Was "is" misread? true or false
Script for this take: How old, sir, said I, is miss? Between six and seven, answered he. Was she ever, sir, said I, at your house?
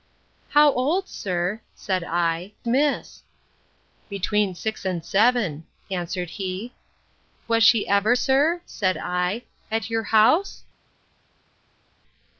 true